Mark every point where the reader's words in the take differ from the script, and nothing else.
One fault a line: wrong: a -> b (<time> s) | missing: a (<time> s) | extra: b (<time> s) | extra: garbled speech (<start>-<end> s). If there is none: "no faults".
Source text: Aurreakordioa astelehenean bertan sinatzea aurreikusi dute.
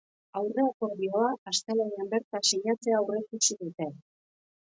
no faults